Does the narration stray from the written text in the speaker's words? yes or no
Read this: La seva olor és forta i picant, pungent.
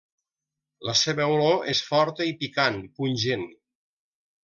no